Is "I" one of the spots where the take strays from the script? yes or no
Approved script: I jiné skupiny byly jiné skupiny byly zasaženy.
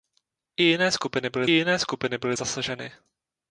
no